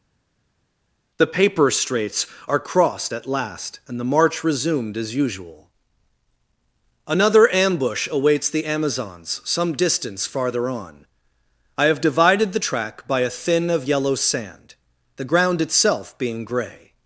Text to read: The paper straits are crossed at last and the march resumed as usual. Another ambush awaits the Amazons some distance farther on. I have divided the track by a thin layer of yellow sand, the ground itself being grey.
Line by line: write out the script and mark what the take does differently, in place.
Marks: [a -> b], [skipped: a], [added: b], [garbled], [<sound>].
The paper straits are crossed at last and the march resumed as usual. Another ambush awaits the Amazons some distance farther on. I have divided the track by a thin [skipped: layer] of yellow sand, the ground itself being grey.